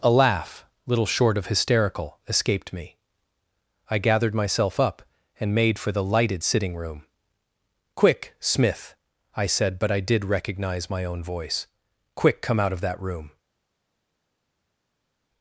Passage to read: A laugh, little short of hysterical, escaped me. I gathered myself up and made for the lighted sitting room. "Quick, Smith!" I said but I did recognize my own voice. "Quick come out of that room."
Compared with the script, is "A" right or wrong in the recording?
right